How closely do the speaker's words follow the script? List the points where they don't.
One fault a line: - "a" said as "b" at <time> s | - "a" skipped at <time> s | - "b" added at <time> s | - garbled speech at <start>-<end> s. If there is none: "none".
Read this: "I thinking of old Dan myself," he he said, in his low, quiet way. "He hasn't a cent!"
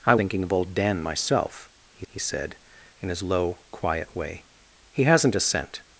none